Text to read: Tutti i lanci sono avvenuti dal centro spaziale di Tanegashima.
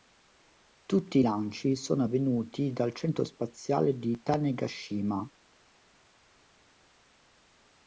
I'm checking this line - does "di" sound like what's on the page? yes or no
yes